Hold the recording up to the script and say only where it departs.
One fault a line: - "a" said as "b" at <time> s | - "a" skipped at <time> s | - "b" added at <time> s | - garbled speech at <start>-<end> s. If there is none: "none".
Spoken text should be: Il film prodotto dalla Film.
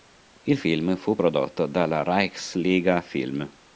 - "fu" added at 0.9 s
- "Reichsliga" added at 2.0 s